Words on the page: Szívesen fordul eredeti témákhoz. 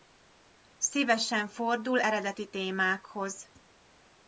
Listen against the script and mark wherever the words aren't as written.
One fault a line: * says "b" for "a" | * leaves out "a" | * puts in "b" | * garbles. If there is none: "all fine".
all fine